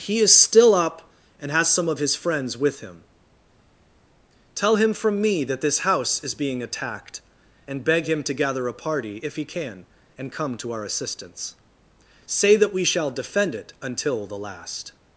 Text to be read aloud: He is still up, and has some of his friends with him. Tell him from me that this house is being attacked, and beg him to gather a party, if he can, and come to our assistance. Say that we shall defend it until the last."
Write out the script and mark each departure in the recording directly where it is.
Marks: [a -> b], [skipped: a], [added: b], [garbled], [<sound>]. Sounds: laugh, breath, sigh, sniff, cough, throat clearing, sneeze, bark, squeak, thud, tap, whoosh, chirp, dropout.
He is still up, and has some of his friends with him. Tell him from me that this house is being attacked, and beg him to gather a party, if he can, and come to our assistance. Say that we shall defend it until the last."